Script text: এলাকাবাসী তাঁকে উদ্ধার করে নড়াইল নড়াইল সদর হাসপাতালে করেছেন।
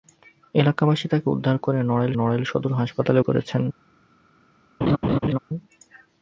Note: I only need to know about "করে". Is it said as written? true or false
true